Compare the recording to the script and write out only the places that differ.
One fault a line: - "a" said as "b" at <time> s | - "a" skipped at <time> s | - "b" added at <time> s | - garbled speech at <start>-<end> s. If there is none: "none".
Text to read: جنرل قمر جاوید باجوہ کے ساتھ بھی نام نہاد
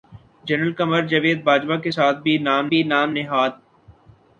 - "بھی نام" added at 2.7 s